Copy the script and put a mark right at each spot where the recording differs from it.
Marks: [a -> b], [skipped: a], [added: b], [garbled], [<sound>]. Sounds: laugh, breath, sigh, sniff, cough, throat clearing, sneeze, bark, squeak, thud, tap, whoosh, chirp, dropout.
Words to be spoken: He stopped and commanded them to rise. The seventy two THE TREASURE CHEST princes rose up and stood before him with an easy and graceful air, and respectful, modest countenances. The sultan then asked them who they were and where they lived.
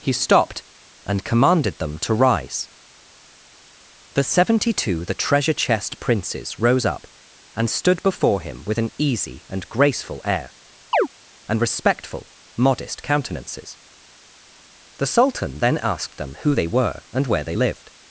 He stopped and commanded them to rise. The seventy two THE TREASURE CHEST princes rose up and stood before him with an easy and graceful air, [chirp] and respectful, modest countenances. The sultan then asked them who they were and where they lived.